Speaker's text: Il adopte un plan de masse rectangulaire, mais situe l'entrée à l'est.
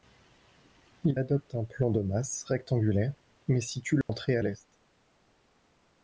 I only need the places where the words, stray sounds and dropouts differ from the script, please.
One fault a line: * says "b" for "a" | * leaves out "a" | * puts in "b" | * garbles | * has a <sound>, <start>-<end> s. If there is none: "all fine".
* has a dropout, 4.0-4.1 s